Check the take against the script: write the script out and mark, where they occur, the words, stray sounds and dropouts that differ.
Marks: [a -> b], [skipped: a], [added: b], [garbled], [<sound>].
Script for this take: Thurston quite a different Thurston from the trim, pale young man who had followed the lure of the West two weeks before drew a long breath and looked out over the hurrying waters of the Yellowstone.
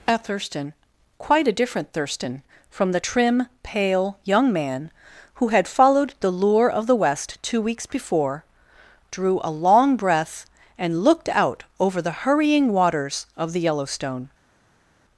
[added: a] Thurston quite a different Thurston from the trim, pale young man who had followed the lure of the West two weeks before drew a long breath and looked out over the hurrying waters of the Yellowstone.